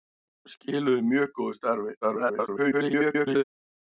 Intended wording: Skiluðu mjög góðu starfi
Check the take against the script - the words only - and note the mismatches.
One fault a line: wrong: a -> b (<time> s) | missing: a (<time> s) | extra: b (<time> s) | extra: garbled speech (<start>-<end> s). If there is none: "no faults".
extra: garbled speech (2.0-3.4 s)